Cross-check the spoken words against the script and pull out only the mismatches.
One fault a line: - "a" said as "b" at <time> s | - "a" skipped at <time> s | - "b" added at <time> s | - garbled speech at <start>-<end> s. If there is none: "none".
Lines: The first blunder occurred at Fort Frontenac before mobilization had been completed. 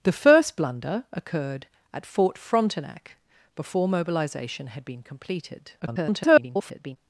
- garbled speech at 5.8-7.0 s